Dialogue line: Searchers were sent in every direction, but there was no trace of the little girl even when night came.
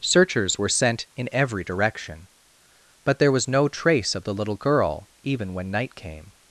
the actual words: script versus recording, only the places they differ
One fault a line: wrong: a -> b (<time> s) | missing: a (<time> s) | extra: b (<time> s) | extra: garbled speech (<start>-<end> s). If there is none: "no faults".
no faults